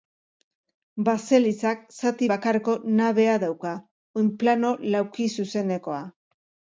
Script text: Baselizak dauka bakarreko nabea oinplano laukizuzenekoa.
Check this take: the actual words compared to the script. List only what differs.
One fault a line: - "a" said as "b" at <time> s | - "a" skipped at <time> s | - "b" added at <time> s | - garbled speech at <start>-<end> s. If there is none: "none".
- "dauka" said as "zati" at 1.9 s
- "dauka" added at 3.5 s